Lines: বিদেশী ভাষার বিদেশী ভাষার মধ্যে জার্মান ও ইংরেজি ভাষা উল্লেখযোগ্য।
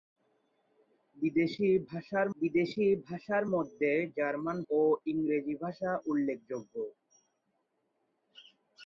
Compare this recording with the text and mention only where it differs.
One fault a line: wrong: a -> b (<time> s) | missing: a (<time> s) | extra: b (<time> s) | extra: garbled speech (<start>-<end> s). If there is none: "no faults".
no faults